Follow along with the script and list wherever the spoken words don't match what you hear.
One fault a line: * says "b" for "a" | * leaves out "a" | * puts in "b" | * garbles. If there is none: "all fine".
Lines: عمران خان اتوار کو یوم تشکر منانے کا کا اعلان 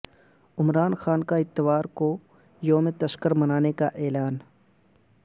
* puts in "کا"
* leaves out "کا"